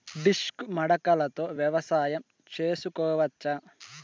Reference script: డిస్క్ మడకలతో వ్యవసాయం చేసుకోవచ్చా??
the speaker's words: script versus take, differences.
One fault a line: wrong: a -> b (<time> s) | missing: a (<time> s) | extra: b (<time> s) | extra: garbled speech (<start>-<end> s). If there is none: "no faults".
no faults